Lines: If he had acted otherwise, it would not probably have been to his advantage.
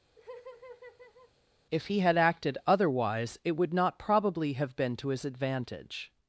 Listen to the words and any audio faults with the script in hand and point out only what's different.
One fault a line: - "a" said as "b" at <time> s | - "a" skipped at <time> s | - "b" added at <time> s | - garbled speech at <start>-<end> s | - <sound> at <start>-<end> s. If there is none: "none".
- laugh at 0.2-1.3 s